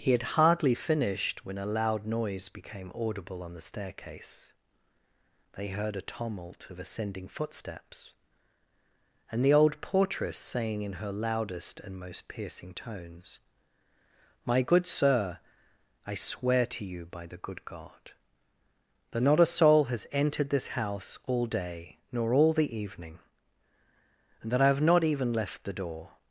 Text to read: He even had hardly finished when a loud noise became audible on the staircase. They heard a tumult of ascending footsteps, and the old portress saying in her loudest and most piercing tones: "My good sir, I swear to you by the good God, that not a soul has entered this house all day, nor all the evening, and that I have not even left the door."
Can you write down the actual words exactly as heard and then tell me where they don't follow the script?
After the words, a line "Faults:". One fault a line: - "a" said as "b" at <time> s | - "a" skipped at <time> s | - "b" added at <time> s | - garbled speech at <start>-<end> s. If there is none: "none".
He had hardly finished when a loud noise became audible on the staircase. They heard a tumult of ascending footsteps, and the old portress saying in her loudest and most piercing tones: "My good sir, I swear to you by the good God, that not a soul has entered this house all day, nor all the evening, and that I have not even left the door."
Faults:
- "even" skipped at 0.1 s